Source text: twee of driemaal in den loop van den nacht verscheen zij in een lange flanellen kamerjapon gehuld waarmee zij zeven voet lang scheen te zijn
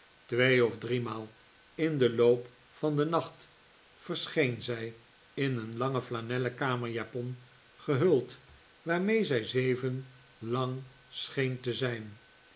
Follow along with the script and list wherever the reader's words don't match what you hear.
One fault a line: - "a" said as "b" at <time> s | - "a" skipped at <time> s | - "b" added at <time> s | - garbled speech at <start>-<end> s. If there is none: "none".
- "voet" skipped at 10.1 s